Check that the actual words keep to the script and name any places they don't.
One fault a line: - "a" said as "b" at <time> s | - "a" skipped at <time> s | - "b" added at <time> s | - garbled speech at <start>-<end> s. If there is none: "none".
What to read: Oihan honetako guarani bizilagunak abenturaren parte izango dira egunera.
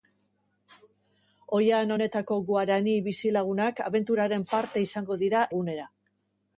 none